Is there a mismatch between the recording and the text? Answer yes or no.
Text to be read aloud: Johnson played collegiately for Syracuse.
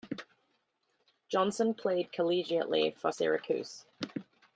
no